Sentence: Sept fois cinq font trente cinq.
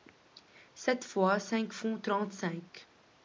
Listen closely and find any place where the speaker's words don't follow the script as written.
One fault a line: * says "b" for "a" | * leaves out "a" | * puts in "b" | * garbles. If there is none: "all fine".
all fine